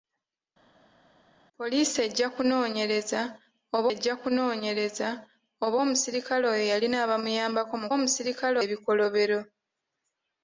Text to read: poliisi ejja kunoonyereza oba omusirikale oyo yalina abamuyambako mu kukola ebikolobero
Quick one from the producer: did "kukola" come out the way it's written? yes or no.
no